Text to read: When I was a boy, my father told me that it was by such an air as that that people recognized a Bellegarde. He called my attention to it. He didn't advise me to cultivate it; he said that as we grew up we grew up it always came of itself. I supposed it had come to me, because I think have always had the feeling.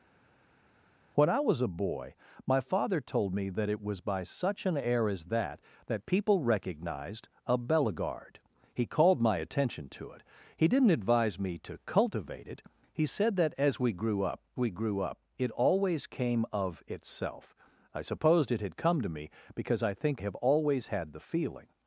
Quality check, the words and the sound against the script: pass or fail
pass